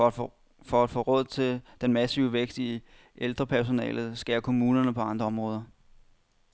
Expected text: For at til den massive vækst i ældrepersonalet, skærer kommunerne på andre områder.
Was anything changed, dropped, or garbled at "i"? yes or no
no